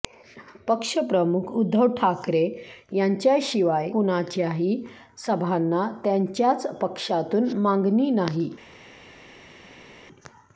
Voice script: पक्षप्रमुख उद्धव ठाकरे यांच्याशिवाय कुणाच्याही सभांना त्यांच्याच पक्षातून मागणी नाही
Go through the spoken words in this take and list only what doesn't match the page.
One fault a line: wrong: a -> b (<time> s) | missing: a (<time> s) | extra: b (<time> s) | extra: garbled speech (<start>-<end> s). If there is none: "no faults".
no faults